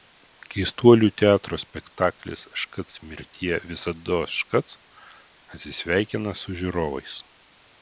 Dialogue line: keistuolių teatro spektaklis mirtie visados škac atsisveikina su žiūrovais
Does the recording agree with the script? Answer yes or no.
no